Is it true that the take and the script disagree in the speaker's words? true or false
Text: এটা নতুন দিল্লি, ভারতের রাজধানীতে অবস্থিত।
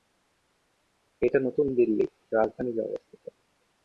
true